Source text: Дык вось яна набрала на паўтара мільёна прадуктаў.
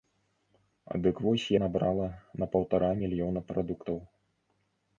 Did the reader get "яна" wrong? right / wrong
wrong